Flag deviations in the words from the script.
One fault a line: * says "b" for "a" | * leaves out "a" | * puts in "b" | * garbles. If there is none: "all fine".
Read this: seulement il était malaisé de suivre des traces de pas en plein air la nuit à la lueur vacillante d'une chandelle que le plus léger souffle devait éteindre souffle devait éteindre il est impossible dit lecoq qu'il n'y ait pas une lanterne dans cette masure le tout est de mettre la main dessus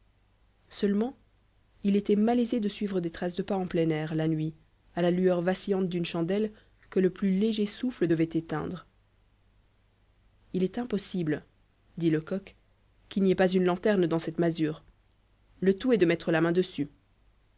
* leaves out "souffle devait éteindre"